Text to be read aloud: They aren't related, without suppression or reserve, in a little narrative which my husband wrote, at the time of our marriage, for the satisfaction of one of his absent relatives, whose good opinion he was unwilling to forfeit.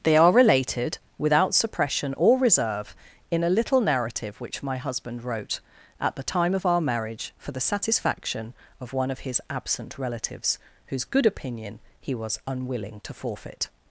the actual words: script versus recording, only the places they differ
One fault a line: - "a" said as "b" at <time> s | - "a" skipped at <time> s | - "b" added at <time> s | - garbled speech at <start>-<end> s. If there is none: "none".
- "aren't" said as "are" at 0.2 s